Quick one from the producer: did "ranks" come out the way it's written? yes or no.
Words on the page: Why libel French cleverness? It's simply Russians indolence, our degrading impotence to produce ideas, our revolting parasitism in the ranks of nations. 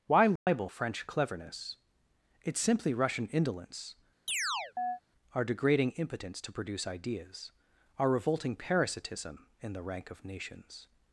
no